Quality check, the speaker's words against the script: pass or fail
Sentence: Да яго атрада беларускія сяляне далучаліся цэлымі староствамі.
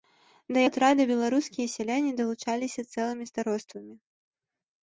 fail